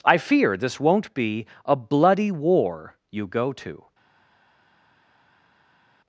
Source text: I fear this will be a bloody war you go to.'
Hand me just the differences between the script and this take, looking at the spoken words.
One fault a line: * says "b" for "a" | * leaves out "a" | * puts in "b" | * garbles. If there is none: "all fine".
* says "won't" for "will"